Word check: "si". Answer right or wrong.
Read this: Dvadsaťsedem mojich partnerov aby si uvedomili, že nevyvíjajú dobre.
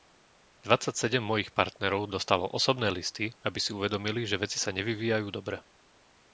right